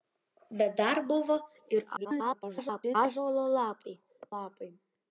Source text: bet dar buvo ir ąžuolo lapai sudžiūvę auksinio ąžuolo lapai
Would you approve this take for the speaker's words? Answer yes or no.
no